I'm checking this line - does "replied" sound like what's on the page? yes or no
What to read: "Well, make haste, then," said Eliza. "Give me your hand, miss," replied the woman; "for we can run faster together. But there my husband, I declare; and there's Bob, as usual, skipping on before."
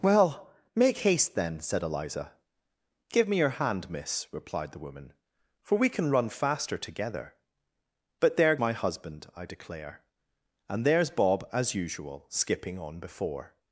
yes